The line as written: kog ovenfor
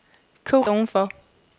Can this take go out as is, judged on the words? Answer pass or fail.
pass